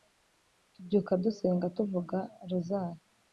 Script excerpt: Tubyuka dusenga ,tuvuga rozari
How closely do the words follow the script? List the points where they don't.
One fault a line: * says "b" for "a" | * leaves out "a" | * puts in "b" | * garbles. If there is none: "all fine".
all fine